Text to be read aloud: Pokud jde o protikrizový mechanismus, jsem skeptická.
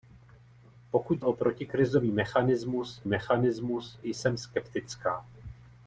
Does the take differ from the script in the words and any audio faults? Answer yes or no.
yes